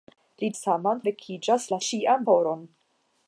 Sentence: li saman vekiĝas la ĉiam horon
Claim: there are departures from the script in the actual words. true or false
false